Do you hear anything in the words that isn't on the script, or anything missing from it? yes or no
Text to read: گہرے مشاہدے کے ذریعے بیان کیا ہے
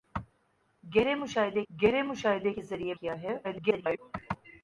yes